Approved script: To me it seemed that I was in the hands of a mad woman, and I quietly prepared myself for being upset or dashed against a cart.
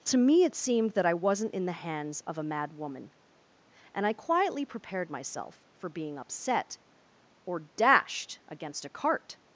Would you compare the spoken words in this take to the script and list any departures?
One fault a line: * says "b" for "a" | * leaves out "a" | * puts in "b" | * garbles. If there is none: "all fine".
* says "wasn't" for "was"